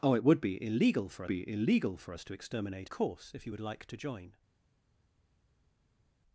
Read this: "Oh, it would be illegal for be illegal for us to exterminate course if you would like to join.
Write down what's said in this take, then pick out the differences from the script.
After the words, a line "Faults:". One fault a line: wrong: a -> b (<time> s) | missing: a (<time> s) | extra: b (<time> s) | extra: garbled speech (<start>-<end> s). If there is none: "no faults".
"Oh, it would be illegal for be illegal for us to exterminate course if you would like to join.
Faults:
no faults